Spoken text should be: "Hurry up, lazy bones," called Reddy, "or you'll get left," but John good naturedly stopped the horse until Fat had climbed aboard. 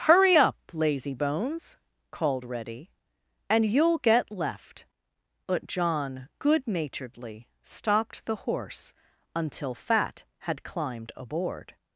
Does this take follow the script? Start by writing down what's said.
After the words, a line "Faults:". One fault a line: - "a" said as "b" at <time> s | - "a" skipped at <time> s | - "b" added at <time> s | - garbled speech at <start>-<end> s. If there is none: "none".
"Hurry up, lazy bones," called Reddy, "and you'll get left," but John good naturedly stopped the horse until Fat had climbed aboard.
Faults:
- "or" said as "and" at 3.5 s